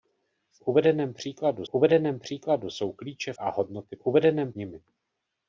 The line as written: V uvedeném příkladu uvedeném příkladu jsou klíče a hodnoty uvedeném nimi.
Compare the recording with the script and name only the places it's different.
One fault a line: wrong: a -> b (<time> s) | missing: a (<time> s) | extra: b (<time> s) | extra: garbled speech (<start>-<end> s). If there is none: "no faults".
no faults